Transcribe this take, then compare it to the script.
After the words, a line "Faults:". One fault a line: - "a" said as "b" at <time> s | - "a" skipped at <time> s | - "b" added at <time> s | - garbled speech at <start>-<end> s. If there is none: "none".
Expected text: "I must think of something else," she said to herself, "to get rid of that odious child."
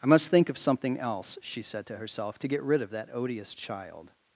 "I must think of something else," she said to herself, "to get rid of that odious child."
Faults:
none